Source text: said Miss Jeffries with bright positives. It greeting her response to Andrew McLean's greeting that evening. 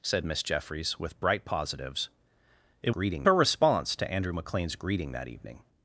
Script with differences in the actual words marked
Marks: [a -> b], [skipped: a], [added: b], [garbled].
said Miss Jeffries with bright positives. It greeting her response to Andrew McLean's greeting that evening.